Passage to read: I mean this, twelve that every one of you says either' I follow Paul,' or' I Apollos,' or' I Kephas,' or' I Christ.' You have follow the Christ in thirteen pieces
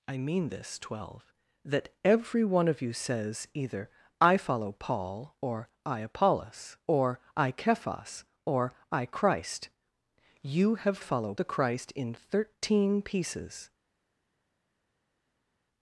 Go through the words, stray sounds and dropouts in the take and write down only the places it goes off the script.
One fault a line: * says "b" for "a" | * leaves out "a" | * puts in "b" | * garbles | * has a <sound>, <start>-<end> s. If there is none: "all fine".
all fine